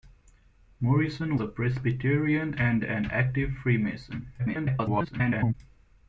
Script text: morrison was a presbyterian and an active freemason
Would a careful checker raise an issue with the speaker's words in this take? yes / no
yes